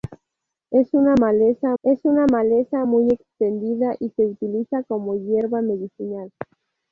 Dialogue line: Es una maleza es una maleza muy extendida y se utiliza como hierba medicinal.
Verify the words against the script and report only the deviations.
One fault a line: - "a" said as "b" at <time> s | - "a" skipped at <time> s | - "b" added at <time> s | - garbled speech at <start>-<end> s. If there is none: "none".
none